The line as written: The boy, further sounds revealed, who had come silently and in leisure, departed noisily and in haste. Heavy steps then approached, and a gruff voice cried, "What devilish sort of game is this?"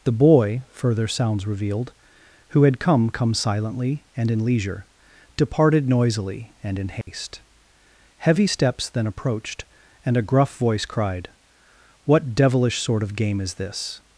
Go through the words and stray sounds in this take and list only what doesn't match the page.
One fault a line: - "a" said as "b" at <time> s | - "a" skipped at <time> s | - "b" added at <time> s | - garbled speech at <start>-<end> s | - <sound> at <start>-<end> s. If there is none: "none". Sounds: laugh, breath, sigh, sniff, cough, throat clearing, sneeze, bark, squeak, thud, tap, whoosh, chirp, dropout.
- "come" added at 3.1 s
- dropout at 7.0-7.1 s